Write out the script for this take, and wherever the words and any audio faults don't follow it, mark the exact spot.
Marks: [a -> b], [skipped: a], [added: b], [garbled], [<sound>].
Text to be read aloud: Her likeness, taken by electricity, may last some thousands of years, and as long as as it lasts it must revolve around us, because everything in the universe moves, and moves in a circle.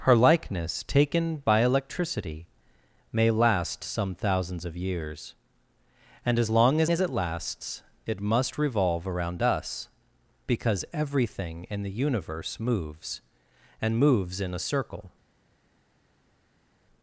Her likeness, taken by electricity, may last some thousands of years, and as long as as it lasts it must revolve around us, because everything in the universe moves, and moves in a circle.